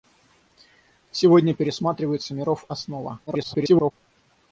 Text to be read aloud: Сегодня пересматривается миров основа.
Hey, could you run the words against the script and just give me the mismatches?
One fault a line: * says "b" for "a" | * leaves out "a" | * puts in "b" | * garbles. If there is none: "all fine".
* garbles